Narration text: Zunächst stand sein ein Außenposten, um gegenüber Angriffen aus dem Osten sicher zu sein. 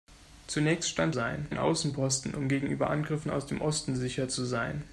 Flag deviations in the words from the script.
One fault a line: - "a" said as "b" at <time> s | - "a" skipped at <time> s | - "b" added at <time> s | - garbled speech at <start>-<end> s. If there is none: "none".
none